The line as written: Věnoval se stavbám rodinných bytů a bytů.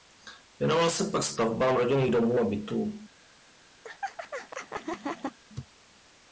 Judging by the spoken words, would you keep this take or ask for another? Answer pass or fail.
fail